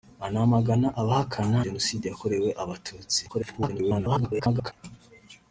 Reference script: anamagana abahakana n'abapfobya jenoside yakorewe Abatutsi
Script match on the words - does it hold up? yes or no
no